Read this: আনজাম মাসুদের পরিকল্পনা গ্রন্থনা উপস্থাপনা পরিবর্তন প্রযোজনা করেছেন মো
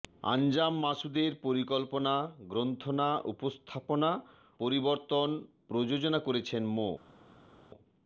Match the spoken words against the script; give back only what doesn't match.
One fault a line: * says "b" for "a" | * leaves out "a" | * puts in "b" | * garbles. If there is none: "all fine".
all fine